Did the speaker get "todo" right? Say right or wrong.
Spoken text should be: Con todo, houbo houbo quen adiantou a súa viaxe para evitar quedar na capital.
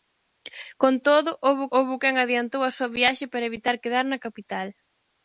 right